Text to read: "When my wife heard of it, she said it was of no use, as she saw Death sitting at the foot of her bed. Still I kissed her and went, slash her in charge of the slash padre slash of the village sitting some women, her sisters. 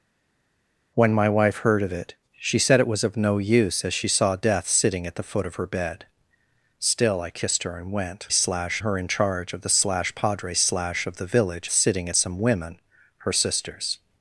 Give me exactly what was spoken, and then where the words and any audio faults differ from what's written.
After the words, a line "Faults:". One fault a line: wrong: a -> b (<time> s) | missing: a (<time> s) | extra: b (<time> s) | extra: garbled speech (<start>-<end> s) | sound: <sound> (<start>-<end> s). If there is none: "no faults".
"When my wife heard of it, she said it was of no use, as she saw Death sitting at the foot of her bed. Still I kissed her and went, slash her in charge of the slash padre slash of the village sitting some women, her sisters.
Faults:
no faults